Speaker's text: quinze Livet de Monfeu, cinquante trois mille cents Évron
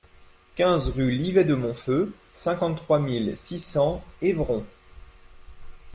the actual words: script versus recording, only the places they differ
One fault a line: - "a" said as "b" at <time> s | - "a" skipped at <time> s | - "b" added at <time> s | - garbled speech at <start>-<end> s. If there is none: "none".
- "rue" added at 0.9 s
- "six" added at 3.4 s